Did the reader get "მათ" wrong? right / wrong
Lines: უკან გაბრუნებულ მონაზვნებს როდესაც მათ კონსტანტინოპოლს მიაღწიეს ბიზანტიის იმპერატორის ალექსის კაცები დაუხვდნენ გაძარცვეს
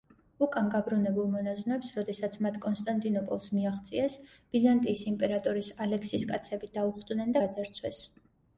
right